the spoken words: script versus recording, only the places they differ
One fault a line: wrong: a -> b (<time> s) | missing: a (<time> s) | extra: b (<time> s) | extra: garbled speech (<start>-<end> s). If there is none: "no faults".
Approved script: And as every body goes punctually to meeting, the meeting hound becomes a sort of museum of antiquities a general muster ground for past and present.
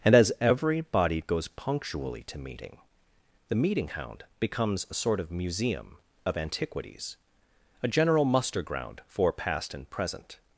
no faults